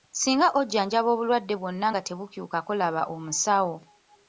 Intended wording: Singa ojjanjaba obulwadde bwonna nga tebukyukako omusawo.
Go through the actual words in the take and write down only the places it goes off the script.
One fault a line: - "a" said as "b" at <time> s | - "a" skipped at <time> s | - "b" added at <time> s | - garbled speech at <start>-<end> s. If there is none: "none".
- "laba" added at 2.8 s